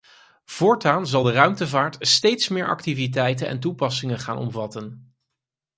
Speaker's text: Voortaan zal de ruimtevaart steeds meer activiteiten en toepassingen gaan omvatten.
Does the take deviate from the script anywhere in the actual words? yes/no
no